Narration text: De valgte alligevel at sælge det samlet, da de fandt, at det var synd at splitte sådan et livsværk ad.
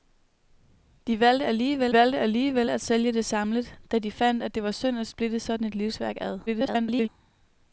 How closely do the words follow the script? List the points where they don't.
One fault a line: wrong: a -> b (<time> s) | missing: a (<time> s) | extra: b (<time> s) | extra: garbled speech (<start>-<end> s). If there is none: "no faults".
extra: valgte alligevel (1.9 s)
extra: garbled speech (6.5-7.1 s)